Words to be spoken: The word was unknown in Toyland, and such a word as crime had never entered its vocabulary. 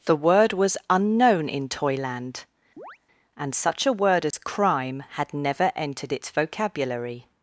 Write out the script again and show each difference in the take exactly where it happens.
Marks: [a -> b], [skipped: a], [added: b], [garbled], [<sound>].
The word was unknown in Toyland, [chirp] and such a word as [dropout] crime had never entered its vocabulary.